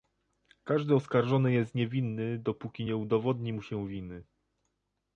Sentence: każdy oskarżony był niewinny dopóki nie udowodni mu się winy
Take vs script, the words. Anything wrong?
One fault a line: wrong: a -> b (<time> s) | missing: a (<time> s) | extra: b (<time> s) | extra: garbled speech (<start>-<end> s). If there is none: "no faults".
wrong: był -> jest (1.5 s)